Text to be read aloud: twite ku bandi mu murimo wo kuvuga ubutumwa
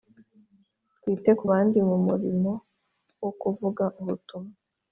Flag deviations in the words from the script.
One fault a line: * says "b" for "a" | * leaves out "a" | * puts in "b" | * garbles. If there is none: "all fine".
all fine